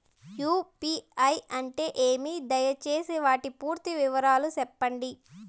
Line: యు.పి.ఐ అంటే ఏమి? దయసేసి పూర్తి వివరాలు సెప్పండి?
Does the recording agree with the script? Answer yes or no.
no